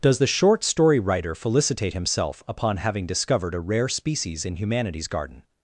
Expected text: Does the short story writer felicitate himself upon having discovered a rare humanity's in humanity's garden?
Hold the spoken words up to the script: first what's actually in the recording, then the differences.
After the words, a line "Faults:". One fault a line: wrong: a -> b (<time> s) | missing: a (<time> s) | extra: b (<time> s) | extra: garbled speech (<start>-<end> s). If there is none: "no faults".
Does the short story writer felicitate himself upon having discovered a rare species in humanity's garden?
Faults:
wrong: humanity's -> species (3.9 s)